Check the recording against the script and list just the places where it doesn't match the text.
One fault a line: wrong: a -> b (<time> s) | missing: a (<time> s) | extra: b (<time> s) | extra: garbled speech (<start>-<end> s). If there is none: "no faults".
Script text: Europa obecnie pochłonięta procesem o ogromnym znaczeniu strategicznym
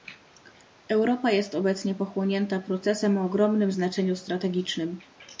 extra: jest (1.3 s)